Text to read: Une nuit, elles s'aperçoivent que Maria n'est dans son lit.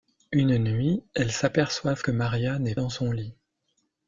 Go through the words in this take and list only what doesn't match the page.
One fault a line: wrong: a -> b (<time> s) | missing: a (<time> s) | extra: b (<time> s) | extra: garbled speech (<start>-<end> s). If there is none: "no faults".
no faults